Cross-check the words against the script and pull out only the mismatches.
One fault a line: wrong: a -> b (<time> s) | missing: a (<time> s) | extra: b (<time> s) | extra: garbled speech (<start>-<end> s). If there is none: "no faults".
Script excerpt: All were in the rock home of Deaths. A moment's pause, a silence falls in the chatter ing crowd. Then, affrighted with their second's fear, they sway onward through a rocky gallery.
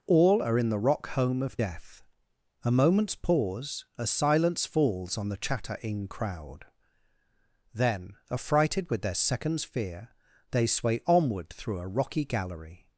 wrong: were -> are (0.4 s)
wrong: Deaths -> Death (1.5 s)
wrong: in -> on (5.2 s)